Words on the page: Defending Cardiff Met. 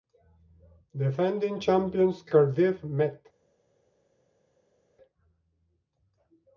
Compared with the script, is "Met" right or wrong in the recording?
right